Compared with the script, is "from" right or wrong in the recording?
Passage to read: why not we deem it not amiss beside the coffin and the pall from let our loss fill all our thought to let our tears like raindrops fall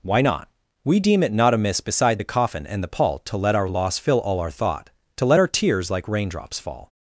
wrong